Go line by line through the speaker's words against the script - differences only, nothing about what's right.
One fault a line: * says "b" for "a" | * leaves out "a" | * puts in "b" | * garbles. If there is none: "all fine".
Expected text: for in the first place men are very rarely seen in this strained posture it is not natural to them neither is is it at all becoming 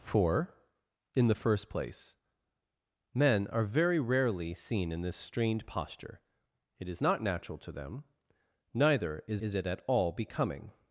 all fine